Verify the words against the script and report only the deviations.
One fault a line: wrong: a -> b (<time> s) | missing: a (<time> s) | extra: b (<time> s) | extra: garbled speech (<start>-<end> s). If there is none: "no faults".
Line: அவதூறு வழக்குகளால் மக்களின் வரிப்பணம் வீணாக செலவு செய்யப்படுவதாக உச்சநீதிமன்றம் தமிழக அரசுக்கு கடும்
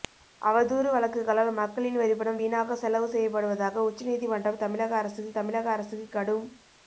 extra: தமிழக அரசுக்கு (5.4 s)